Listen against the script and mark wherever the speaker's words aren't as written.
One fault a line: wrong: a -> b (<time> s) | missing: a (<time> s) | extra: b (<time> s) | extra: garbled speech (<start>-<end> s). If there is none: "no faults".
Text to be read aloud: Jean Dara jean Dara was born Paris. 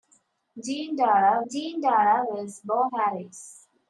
no faults